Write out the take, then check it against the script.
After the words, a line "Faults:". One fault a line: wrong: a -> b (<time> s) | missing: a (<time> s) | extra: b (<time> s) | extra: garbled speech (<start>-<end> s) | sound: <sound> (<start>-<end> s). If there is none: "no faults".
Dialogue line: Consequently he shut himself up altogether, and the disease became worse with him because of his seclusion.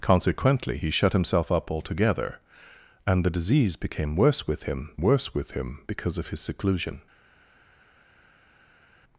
Consequently he shut himself up altogether, and the disease became worse with him worse with him because of his seclusion.
Faults:
extra: worse with him (5.0 s)